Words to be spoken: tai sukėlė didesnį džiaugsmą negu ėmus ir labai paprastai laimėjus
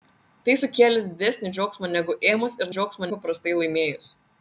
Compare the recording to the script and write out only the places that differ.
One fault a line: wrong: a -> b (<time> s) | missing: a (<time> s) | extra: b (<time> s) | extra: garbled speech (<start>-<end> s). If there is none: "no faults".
wrong: labai -> džiaugsmą (2.8 s)